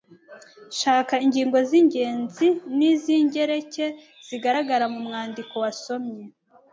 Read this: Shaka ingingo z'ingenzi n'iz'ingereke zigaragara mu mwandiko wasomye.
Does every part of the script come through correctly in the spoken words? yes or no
yes